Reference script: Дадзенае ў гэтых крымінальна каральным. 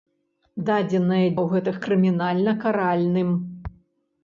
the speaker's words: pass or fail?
pass